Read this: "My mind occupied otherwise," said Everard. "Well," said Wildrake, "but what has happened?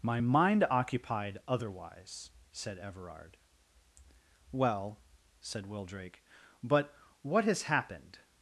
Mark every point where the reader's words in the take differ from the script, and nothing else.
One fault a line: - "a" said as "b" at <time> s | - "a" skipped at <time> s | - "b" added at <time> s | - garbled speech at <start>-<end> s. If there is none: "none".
none